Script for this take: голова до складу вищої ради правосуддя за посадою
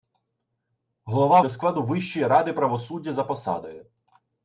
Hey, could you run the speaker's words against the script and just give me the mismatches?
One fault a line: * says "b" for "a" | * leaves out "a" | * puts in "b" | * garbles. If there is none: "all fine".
all fine